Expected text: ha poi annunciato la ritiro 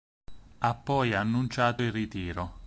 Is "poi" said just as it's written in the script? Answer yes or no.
yes